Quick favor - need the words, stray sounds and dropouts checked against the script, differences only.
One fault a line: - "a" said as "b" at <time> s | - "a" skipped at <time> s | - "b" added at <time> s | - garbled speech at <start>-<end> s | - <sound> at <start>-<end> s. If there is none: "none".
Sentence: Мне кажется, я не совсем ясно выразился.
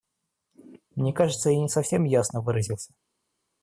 none